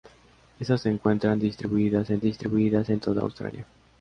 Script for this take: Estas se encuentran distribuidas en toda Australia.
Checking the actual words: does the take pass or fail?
fail